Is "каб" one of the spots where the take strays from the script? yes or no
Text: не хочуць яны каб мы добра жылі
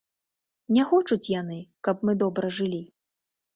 no